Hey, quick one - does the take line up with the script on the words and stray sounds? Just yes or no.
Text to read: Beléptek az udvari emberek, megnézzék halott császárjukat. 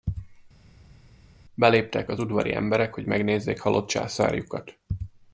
no